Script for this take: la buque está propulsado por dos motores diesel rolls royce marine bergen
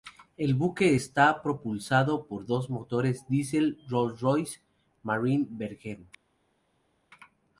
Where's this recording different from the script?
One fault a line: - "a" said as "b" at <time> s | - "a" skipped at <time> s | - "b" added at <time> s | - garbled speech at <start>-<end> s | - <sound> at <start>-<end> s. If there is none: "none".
- "la" said as "el" at 0.3 s